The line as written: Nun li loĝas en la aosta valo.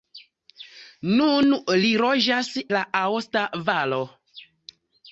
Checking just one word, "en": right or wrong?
wrong